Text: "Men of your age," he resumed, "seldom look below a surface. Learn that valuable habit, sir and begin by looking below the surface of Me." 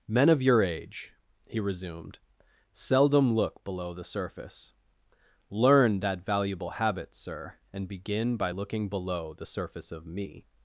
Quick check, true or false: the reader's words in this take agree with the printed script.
false